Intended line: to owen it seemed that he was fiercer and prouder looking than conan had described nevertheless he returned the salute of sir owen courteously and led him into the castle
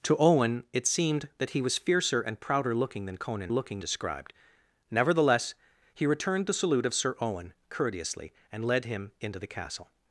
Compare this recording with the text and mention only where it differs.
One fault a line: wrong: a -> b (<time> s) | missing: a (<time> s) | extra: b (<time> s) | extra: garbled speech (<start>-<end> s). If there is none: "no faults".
wrong: had -> looking (3.5 s)